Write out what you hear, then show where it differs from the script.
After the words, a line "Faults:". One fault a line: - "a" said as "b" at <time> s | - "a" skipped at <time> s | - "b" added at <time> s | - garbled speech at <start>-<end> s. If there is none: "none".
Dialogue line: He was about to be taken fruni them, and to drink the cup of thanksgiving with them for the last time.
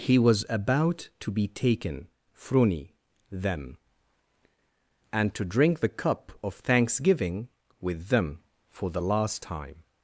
He was about to be taken fruni them, and to drink the cup of thanksgiving with them for the last time.
Faults:
none